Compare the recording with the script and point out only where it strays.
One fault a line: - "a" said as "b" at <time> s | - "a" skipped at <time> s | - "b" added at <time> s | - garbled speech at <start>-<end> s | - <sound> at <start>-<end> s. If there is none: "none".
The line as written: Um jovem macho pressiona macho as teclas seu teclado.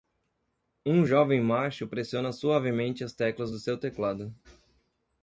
- "macho" said as "suavemente" at 2.3 s
- "do" added at 3.5 s